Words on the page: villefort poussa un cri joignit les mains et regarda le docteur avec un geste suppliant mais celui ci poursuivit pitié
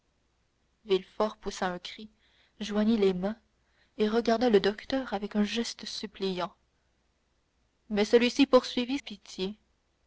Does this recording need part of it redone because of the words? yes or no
no